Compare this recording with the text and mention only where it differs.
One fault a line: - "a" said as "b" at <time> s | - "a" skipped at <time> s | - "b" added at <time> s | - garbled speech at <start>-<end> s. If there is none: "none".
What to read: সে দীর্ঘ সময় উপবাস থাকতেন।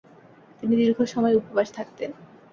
- "সে" said as "তিনি" at 0.6 s